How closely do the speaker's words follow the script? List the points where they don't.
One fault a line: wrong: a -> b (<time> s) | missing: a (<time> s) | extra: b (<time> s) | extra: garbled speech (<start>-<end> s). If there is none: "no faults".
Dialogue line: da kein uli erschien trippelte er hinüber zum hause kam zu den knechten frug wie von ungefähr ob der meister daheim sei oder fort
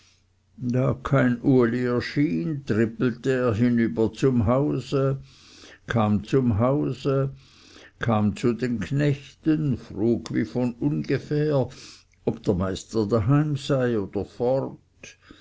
extra: zum hause kam (6.2 s)